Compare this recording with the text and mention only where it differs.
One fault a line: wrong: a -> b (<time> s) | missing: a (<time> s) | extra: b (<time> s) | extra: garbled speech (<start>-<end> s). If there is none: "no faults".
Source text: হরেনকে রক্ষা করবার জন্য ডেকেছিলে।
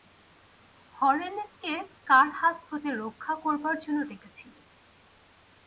extra: কার হাত হতে (2.0 s)